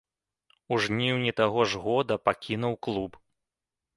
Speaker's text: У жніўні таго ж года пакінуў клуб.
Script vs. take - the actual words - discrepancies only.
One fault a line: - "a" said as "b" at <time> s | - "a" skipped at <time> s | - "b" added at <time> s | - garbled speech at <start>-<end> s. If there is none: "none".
none